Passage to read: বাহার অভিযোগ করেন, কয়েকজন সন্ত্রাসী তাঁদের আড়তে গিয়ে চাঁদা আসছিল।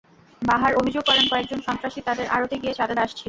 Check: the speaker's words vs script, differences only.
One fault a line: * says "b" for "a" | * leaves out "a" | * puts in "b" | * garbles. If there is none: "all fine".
all fine